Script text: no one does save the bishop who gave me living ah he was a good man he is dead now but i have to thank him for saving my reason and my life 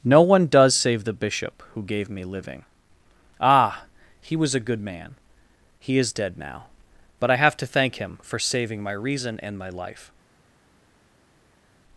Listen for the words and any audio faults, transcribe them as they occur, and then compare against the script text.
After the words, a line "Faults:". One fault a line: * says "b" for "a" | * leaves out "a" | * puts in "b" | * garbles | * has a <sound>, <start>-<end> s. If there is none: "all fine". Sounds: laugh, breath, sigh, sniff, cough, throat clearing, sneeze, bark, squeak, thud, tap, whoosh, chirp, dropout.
no one does save the bishop who gave me living ah he was a good man he is dead now but i have to thank him for saving my reason and my life
Faults:
all fine